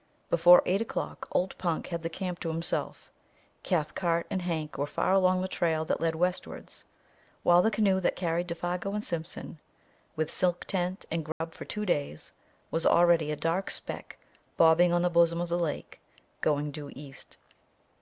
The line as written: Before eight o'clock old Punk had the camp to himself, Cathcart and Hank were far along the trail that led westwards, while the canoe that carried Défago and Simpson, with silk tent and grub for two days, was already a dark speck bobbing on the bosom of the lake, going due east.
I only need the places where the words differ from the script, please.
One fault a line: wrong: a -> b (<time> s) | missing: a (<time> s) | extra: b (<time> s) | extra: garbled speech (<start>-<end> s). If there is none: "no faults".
no faults